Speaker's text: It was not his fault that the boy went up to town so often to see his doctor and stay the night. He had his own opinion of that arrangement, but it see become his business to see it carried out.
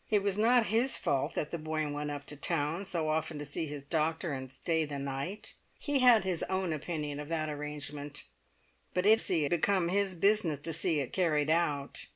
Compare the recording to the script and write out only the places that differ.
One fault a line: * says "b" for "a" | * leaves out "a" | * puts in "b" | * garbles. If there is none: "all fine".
all fine